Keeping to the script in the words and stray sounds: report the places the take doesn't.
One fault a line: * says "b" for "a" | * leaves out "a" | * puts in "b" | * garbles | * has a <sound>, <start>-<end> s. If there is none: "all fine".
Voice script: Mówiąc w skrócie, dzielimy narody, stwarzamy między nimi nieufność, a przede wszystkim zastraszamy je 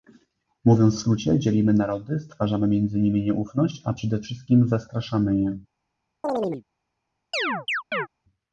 * has a chirp, 6.2-6.6 s
* has a chirp, 7.3-8.1 s